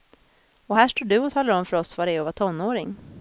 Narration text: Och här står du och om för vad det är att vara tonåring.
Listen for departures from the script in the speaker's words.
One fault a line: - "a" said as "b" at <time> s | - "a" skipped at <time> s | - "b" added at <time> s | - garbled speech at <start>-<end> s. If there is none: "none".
- "talar" added at 1.3 s
- "oss" added at 1.8 s